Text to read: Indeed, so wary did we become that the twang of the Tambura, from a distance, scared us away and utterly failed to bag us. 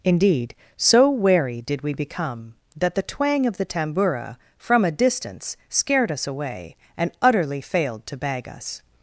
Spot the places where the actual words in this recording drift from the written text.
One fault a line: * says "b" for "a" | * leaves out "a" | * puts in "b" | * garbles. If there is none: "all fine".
all fine